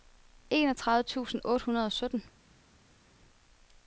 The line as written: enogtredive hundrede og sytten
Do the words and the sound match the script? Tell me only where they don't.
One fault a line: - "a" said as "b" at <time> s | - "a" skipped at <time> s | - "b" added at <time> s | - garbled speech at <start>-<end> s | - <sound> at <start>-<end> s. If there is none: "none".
- "tusind otte" added at 1.0 s